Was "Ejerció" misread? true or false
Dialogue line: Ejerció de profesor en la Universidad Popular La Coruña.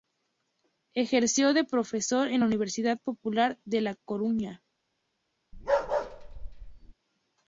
false